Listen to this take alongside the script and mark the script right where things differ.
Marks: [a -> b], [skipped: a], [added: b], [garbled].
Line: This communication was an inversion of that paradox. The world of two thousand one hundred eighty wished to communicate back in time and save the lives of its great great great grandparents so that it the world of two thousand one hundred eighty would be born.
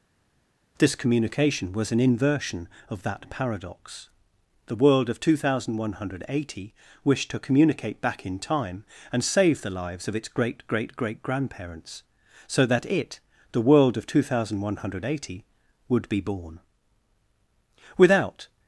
This communication was an inversion of that paradox. The world of two thousand one hundred eighty wished to communicate back in time and save the lives of its great great great grandparents so that it the world of two thousand one hundred eighty would be born. [added: Without]